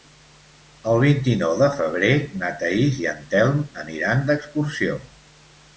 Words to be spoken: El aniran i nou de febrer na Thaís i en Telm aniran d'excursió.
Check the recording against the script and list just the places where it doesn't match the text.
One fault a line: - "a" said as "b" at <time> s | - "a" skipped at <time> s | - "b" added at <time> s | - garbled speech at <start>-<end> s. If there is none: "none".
- "aniran" said as "vint" at 1.0 s